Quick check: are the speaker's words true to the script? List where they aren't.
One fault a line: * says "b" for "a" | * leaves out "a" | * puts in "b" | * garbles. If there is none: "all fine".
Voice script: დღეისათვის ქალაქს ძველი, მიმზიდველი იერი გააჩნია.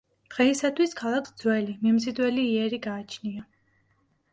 all fine